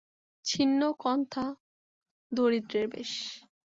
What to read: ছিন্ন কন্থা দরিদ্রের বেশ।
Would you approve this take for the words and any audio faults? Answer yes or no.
yes